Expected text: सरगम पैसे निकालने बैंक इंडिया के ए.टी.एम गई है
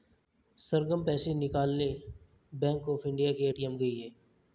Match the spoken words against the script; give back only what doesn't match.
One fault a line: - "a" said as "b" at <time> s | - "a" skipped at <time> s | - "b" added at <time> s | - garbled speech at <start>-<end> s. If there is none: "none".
- "ऑफ" added at 2.9 s